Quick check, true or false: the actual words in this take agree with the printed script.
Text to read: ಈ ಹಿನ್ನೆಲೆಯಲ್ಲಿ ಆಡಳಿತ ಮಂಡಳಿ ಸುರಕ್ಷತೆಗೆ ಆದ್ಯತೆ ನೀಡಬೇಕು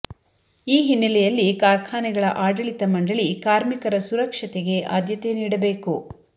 false